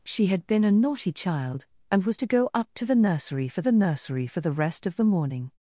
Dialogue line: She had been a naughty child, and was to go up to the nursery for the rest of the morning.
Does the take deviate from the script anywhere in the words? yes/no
yes